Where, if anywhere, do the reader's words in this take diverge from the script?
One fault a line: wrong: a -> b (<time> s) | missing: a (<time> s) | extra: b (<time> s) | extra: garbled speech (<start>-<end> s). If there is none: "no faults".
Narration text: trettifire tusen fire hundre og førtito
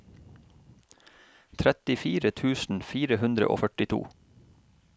no faults